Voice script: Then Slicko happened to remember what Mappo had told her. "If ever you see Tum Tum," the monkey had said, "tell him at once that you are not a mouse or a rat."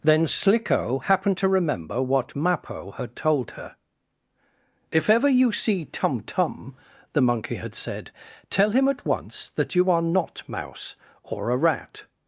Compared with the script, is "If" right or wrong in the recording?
right